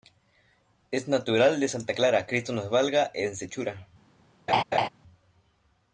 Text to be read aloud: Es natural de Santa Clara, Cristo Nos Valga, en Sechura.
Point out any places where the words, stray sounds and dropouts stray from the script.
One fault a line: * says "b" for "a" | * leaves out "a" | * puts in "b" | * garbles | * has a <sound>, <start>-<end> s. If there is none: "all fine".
* has a laugh, 4.5-4.9 s